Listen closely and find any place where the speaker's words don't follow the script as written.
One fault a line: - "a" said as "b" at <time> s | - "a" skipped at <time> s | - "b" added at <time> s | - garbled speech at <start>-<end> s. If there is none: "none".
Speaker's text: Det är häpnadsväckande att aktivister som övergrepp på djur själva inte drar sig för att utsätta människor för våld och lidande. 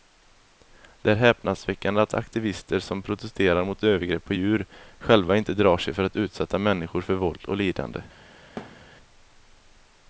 - "protesterar mot" added at 3.0 s